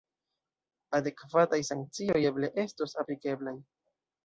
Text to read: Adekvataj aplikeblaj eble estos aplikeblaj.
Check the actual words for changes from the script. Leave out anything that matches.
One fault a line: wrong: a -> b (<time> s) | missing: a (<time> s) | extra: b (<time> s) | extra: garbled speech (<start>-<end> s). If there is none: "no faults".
wrong: aplikeblaj -> sankcioj (1.7 s)